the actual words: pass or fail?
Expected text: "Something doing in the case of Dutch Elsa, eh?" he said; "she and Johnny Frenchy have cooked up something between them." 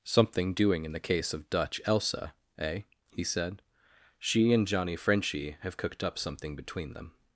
pass